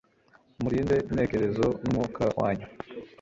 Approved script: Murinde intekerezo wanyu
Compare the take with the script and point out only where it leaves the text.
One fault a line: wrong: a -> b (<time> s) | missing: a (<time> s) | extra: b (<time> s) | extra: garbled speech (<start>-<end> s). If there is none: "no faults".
extra: numwuka (1.8 s)